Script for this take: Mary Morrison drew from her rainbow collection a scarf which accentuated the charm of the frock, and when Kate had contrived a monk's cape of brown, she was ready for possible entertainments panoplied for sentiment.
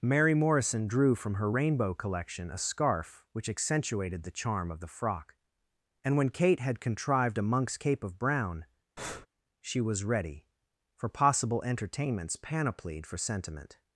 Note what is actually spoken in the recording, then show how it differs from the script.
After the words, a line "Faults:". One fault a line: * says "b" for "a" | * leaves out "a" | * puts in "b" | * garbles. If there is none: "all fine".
Mary Morrison drew from her rainbow collection a scarf which accentuated the charm of the frock, and when Kate had contrived a monk's cape of brown, she was ready for possible entertainments panoplied for sentiment.
Faults:
all fine